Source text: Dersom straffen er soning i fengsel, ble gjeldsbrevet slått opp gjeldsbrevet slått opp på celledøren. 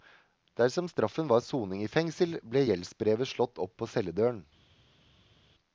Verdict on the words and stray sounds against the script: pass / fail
fail